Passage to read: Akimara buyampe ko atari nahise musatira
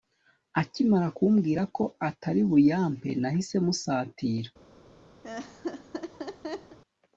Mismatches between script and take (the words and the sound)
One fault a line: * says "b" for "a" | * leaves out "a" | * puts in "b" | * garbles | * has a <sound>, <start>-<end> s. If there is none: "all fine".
* says "kumbwira" for "buyampe"
* puts in "buyampe"
* has a laugh, 5.2-6.8 s